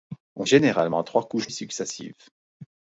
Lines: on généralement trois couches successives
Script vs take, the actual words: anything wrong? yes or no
no